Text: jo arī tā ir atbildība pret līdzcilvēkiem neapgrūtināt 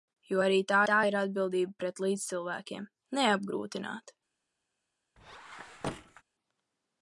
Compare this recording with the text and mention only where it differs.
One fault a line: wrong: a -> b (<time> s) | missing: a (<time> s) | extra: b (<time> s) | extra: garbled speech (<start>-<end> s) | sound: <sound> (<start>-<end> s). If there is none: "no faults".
extra: tā (0.9 s)
sound: squeak (5.2-6.2 s)